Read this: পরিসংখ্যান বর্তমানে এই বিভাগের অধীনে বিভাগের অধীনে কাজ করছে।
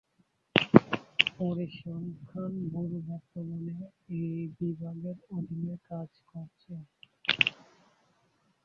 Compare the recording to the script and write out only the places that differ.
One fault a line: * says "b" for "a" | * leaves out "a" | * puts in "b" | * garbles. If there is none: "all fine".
* puts in "ব্যুরো"
* leaves out "বিভাগের অধীনে"